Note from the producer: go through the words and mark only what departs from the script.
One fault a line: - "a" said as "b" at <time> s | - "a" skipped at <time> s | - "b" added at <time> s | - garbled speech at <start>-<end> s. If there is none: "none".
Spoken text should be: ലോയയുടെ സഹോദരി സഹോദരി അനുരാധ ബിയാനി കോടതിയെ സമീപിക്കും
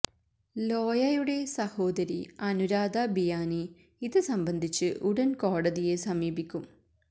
- "സഹോദരി" skipped at 2.2 s
- "ഇത് സംബന്ധിച്ച് ഉടൻ" added at 4.0 s